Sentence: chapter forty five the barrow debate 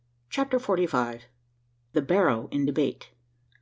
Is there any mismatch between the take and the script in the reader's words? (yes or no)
yes